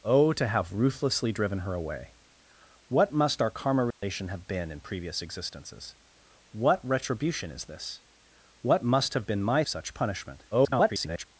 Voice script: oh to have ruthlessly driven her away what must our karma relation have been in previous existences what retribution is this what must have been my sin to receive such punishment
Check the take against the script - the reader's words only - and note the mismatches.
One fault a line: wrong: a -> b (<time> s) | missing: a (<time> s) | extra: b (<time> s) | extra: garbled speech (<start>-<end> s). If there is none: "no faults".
missing: sin to receive (9.6 s)
extra: garbled speech (10.5-11.3 s)